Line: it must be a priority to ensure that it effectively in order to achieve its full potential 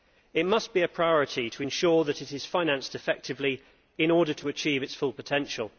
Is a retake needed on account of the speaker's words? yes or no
yes